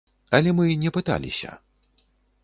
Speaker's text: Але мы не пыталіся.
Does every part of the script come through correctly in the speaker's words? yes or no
yes